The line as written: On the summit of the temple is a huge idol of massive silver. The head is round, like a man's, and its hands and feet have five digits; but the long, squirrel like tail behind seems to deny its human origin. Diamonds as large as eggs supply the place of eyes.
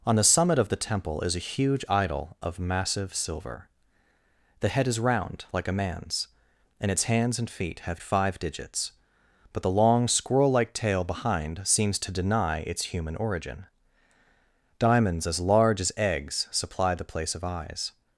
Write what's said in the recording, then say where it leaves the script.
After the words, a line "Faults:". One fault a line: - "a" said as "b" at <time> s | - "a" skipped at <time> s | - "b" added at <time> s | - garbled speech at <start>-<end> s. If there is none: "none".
On the summit of the temple is a huge idol of massive silver. The head is round, like a man's, and its hands and feet have five digits; but the long, squirrel like tail behind seems to deny its human origin. Diamonds as large as eggs supply the place of eyes.
Faults:
none